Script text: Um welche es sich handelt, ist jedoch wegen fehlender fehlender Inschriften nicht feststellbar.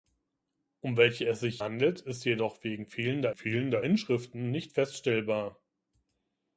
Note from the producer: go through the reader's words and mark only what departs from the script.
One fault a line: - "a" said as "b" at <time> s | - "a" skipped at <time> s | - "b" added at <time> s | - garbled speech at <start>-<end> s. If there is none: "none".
none